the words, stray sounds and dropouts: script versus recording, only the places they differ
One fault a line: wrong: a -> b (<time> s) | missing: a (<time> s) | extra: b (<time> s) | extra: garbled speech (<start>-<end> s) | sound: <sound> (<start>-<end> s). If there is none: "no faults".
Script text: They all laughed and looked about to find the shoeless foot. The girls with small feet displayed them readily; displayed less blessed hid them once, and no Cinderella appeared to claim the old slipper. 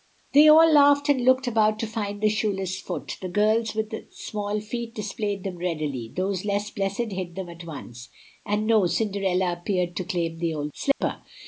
wrong: displayed -> those (6.2 s)
extra: at (7.5 s)
sound: dropout (10.9-11.0 s)